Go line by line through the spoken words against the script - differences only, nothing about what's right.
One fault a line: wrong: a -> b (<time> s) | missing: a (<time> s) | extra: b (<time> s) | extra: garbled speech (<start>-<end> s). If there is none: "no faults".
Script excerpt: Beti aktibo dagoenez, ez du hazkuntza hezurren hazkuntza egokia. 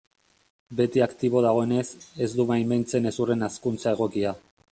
wrong: hazkuntza -> baimentzen (2.5 s)